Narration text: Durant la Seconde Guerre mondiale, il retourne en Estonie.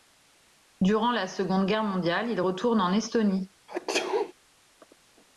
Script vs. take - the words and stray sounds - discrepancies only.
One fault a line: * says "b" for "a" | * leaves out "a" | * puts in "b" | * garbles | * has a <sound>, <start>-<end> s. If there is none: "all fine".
* has a sneeze, 3.7-4.3 s